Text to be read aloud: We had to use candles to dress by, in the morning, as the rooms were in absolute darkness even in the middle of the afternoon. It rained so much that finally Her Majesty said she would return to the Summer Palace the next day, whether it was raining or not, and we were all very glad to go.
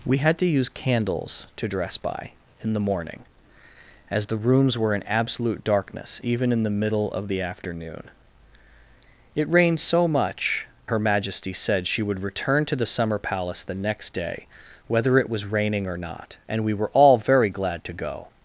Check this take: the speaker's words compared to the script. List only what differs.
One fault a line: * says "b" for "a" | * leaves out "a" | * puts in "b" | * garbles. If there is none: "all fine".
* leaves out "that finally"